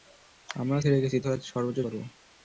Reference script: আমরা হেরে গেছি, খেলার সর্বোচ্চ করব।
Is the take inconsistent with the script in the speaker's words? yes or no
no